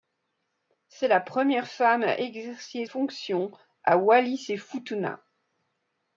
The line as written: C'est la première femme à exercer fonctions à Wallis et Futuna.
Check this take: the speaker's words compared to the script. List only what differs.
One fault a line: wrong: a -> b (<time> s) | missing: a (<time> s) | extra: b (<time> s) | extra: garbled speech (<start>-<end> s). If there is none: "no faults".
no faults